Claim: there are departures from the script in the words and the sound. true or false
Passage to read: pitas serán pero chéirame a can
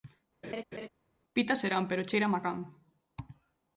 true